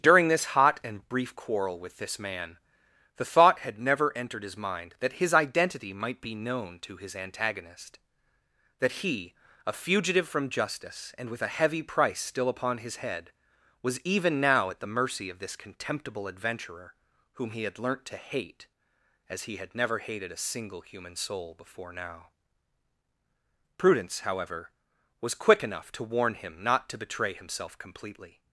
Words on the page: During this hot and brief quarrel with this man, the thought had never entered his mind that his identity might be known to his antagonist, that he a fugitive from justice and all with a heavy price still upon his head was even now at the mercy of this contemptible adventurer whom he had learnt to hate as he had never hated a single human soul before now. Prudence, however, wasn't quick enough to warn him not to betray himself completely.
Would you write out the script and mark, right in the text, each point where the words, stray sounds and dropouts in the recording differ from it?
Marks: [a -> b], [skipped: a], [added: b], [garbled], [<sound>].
During this hot and brief quarrel with this man, the thought had never entered his mind that his identity might be known to his antagonist, that he a fugitive from justice and [skipped: all] with a heavy price still upon his head was even now at the mercy of this contemptible adventurer whom he had learnt to hate as he had never hated a single human soul before now. Prudence, however, [wasn't -> was] quick enough to warn him not to betray himself completely.